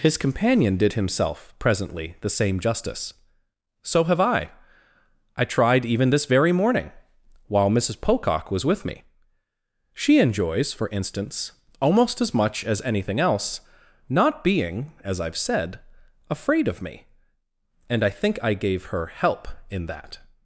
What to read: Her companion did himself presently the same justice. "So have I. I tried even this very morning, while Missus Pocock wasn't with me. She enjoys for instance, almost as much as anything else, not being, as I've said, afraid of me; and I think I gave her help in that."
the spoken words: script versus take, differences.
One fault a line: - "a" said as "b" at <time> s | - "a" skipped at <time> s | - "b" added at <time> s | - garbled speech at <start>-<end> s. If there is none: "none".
- "Her" said as "His" at 0.0 s
- "wasn't" said as "was" at 8.5 s